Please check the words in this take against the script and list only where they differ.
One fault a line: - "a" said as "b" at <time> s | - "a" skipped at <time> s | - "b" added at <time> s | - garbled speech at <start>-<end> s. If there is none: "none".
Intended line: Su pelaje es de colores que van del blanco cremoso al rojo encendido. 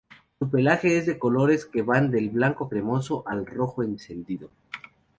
none